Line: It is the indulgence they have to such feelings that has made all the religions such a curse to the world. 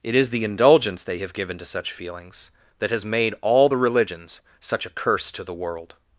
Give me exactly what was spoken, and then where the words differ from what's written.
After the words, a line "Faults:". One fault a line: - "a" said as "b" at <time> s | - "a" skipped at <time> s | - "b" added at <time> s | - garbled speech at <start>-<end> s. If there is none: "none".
It is the indulgence they have given to such feelings that has made all the religions such a curse to the world.
Faults:
- "given" added at 1.3 s